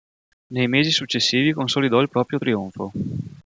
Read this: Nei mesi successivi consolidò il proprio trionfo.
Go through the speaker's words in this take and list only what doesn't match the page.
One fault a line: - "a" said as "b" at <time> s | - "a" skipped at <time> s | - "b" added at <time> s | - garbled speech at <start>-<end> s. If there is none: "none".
none